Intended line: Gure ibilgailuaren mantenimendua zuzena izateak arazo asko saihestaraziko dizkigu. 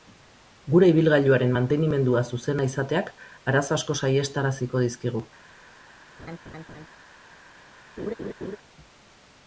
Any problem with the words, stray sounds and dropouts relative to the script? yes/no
yes